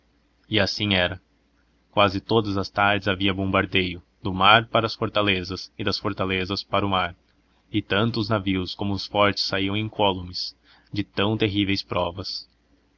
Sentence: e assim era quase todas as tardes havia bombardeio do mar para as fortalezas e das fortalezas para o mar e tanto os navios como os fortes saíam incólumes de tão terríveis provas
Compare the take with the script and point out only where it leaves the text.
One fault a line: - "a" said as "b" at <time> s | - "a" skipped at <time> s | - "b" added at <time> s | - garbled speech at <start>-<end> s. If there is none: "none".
none